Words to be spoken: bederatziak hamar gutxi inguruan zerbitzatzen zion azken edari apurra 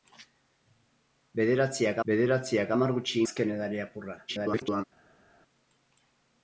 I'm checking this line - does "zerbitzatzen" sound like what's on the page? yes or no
no